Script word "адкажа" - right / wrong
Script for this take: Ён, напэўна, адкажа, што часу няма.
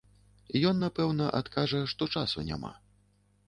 right